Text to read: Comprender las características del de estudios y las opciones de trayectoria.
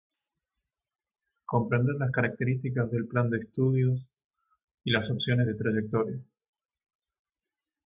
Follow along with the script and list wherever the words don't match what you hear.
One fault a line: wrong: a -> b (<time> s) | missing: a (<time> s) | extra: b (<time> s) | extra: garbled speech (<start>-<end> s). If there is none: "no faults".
extra: plan (3.1 s)